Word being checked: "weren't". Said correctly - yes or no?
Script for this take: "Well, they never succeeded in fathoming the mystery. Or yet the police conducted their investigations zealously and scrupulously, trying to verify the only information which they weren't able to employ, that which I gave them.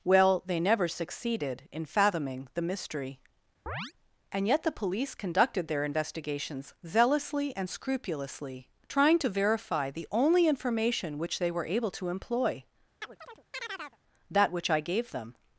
no